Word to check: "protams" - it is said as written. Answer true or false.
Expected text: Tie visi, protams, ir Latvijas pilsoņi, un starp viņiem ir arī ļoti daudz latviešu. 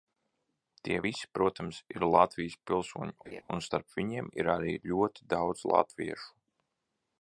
true